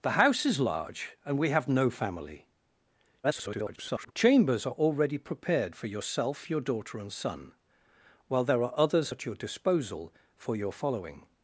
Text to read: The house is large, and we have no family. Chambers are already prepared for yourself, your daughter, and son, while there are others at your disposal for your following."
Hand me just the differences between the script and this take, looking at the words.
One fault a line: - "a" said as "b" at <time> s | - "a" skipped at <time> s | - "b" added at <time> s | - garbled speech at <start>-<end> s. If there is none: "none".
- garbled speech at 3.2-4.1 s